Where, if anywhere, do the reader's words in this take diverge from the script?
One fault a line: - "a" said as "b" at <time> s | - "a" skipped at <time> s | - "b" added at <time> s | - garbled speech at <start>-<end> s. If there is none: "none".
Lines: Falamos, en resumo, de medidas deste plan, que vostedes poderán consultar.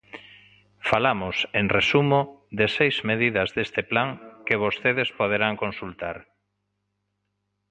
- "seis" added at 2.7 s